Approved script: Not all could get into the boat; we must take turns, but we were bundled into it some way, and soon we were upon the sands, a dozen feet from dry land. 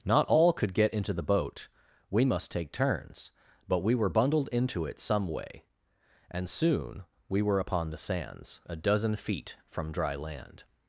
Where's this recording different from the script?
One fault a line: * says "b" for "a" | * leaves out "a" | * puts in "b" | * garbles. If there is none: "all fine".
all fine